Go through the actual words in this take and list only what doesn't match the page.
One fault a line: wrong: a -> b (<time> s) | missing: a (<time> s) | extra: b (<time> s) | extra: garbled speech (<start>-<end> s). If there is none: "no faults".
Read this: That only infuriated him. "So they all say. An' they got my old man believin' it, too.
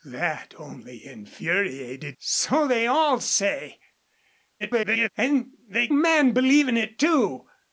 missing: him (2.2 s)
extra: garbled speech (4.6-5.1 s)
missing: got my old (5.9 s)